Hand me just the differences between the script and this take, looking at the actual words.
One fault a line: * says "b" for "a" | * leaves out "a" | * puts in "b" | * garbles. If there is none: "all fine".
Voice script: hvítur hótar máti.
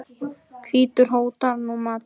* puts in "nú"